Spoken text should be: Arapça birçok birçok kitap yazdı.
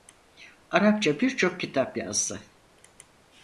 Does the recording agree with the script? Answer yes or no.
no